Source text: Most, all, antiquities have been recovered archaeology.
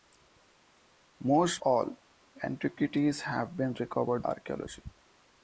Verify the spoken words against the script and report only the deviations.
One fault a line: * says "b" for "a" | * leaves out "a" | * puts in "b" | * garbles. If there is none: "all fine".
all fine